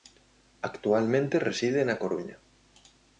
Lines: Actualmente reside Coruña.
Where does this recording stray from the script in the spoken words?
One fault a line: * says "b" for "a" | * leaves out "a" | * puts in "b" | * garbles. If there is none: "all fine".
* puts in "na"